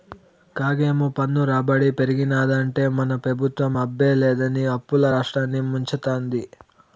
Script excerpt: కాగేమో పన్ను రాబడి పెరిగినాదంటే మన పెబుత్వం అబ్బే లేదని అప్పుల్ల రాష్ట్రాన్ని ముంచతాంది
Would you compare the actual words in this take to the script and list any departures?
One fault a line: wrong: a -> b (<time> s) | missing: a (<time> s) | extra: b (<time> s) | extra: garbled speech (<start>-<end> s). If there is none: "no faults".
no faults